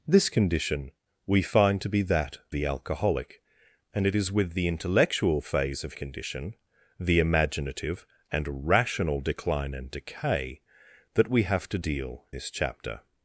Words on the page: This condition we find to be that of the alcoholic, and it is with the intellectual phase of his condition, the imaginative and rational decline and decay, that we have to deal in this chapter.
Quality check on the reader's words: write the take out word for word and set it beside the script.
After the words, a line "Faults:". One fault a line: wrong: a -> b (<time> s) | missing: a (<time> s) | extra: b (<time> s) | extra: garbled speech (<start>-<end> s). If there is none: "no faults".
This condition we find to be that the alcoholic, and it is with the intellectual phase of condition, the imaginative and rational decline and decay, that we have to deal this chapter.
Faults:
missing: of (2.4 s)
missing: his (5.9 s)
missing: in (12.2 s)